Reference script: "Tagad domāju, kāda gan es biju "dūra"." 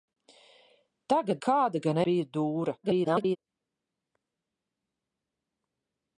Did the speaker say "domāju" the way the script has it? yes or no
no